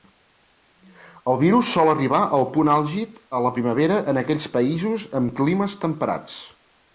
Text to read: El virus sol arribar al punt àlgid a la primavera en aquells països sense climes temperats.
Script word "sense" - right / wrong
wrong